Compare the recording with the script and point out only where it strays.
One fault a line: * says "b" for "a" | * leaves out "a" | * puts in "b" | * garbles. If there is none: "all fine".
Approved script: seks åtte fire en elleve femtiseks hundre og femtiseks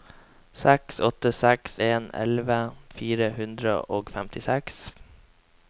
* says "seks" for "fire"
* says "fire" for "femtiseks"